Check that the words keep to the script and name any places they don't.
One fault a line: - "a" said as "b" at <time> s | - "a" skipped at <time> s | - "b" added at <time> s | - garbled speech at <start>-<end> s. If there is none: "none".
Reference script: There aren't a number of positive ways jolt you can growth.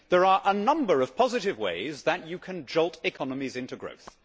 - "aren't" said as "are" at 0.2 s
- "jolt" said as "that" at 2.0 s
- "jolt economies into" added at 2.6 s